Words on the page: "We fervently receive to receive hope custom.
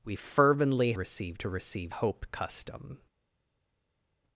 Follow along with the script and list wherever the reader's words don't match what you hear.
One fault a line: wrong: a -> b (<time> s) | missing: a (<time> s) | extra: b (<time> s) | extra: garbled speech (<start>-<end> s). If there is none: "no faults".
no faults